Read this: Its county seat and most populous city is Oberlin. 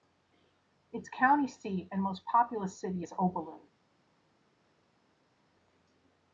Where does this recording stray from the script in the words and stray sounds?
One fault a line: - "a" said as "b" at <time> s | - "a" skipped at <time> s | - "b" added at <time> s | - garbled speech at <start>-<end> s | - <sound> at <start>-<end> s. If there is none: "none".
none